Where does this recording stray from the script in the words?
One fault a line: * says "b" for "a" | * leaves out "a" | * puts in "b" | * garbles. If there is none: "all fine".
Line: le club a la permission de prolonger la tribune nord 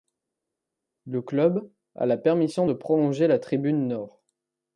all fine